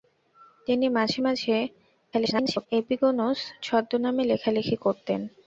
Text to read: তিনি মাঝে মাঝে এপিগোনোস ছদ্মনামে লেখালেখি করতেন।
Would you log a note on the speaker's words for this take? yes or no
yes